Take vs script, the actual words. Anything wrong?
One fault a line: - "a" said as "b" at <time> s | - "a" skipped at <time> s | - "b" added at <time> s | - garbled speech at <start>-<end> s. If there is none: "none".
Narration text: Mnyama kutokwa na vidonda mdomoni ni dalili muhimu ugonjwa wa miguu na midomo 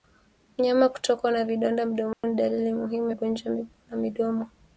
none